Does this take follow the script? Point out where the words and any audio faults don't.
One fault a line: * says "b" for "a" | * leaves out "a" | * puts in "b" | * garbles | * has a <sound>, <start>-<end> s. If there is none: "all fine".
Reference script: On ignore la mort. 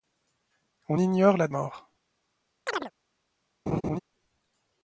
* has a chirp, 2.7-2.9 s
* has a laugh, 3.7-4.0 s